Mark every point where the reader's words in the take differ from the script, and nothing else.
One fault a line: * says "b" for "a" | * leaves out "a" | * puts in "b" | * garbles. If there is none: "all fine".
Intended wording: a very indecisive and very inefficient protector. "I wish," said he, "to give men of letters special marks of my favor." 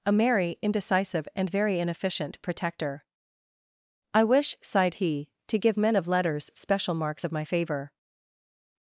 * says "merry" for "very"
* says "sighed" for "said"